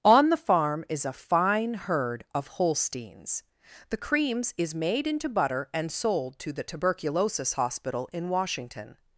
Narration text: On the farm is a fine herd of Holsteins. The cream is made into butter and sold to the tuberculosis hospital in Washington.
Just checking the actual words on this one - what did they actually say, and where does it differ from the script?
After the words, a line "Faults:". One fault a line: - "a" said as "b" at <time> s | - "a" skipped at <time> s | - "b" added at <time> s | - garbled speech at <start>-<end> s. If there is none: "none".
On the farm is a fine herd of Holsteins. The creams is made into butter and sold to the tuberculosis hospital in Washington.
Faults:
- "cream" said as "creams" at 4.0 s